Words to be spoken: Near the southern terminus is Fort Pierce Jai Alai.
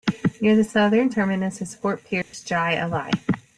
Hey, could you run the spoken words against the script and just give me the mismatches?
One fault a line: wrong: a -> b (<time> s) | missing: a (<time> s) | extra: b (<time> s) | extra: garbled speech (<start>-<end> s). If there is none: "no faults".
no faults